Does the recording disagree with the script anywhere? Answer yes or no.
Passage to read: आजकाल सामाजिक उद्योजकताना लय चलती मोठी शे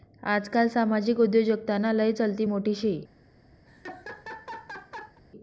no